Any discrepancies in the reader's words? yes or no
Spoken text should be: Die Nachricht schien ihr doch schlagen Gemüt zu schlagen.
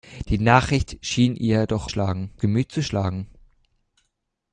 no